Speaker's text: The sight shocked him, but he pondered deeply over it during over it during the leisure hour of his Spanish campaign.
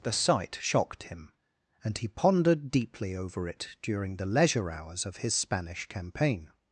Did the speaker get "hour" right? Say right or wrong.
wrong